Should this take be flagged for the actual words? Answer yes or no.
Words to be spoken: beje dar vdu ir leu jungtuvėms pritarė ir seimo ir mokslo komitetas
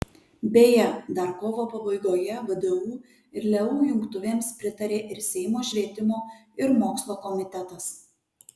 yes